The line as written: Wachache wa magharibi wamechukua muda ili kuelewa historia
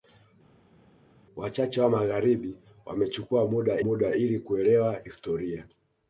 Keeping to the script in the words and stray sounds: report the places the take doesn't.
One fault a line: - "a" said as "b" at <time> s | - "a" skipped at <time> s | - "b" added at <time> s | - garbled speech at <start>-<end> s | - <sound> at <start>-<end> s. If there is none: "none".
- "muda" added at 3.8 s